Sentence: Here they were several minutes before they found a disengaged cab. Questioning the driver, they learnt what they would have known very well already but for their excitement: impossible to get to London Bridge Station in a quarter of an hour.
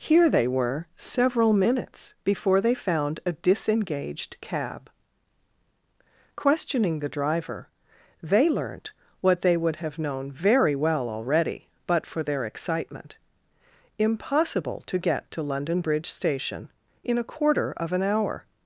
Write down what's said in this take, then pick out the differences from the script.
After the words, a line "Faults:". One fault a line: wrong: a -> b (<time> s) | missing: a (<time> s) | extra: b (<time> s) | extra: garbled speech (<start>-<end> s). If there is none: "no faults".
Here they were several minutes before they found a disengaged cab. Questioning the driver, they learnt what they would have known very well already but for their excitement: impossible to get to London Bridge Station in a quarter of an hour.
Faults:
no faults